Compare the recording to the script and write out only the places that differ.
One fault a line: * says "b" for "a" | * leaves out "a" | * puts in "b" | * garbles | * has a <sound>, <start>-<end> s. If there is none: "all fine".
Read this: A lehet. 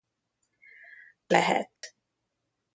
* has a dropout, 1.8-1.8 s